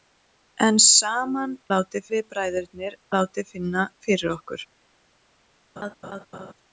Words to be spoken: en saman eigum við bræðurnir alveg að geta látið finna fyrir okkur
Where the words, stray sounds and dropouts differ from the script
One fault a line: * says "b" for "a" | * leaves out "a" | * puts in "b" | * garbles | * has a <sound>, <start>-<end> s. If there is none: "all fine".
* says "látið" for "eigum"
* leaves out "alveg að geta"
* has a laugh, 5.8-6.5 s